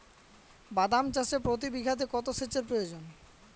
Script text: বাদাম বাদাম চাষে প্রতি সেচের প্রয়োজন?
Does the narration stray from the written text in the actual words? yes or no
yes